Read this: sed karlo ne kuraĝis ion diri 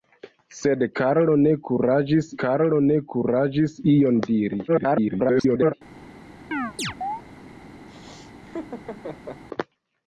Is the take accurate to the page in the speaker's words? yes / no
no